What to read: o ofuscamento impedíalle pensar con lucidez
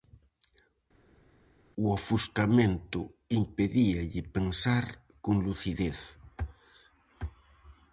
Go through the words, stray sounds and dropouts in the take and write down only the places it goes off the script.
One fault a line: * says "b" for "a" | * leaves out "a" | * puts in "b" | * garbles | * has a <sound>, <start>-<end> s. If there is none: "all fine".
all fine